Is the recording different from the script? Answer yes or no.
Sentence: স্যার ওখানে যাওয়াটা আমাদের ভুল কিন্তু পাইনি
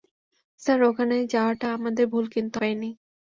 no